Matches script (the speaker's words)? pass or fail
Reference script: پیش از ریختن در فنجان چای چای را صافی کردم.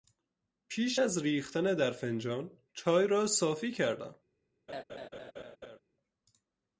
fail